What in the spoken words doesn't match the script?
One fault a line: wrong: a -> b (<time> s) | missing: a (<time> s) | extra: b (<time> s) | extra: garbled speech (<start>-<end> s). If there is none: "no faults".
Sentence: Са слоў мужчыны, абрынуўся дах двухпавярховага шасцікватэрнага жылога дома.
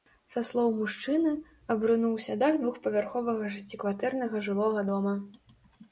no faults